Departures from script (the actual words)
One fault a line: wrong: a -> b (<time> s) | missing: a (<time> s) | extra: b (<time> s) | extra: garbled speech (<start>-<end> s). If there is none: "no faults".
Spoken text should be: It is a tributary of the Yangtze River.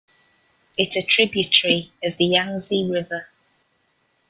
missing: is (1.0 s)